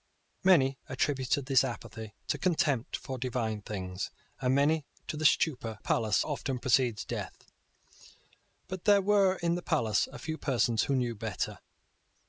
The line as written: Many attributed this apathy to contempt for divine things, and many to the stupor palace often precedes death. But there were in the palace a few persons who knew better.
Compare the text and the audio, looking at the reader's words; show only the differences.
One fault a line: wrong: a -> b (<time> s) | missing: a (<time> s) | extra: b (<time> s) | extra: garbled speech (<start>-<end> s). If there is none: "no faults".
no faults